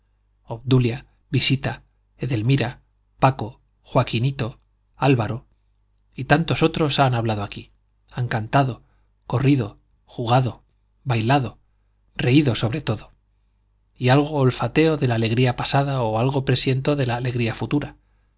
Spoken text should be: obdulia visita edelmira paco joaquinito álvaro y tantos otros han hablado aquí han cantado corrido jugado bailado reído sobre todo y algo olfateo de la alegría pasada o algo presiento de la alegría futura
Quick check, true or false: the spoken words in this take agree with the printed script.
true